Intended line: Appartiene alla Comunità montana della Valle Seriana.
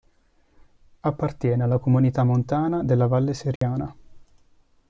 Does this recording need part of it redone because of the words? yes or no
no